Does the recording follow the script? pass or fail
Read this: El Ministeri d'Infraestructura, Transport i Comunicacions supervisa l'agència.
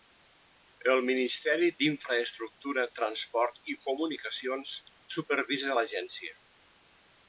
pass